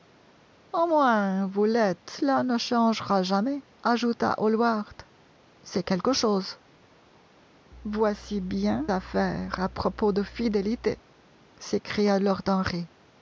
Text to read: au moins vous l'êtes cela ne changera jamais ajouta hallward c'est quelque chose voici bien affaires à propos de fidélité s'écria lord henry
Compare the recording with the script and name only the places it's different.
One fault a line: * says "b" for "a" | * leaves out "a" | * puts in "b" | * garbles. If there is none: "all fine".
all fine